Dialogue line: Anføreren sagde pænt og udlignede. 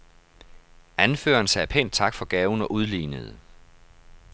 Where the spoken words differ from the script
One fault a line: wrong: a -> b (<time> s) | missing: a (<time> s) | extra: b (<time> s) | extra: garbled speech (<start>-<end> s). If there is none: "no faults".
extra: tak for gaven (1.9 s)